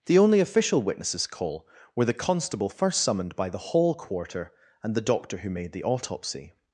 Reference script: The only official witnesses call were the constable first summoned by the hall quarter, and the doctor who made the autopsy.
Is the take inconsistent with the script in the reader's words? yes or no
no